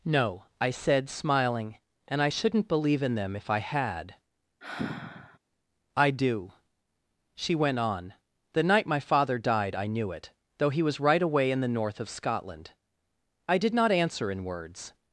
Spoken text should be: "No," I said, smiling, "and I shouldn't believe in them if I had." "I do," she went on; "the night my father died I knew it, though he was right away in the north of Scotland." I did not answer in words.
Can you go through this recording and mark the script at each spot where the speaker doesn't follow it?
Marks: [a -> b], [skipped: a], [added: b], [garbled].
"No," I said, smiling, "and I shouldn't believe in them if I had." "I do," she went on; "the night my father died I knew it, though he was right away in the north of Scotland." I did not answer in words.